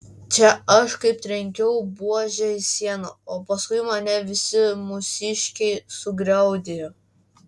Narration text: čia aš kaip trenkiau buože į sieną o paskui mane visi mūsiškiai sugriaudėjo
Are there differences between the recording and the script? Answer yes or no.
no